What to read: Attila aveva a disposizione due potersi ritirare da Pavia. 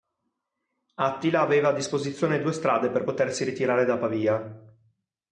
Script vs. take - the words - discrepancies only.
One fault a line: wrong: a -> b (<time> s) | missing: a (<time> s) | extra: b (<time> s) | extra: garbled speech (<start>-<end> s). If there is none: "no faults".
extra: strade per (2.5 s)